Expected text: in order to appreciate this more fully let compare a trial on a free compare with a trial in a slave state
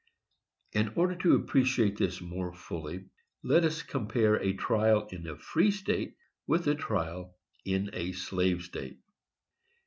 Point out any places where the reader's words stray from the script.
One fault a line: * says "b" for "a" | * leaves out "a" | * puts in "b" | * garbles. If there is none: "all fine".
* puts in "us"
* says "in" for "on"
* says "state" for "compare"